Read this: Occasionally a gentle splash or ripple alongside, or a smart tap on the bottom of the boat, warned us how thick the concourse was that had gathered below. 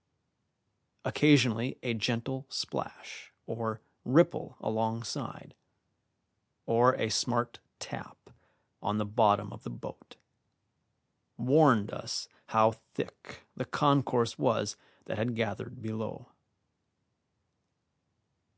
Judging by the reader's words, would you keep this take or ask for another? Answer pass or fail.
pass